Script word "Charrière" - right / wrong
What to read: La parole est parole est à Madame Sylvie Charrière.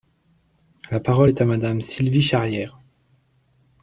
right